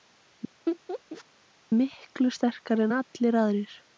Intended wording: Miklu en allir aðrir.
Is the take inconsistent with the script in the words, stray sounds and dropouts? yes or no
yes